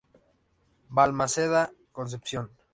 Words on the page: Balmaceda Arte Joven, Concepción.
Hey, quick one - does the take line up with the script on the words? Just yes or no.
no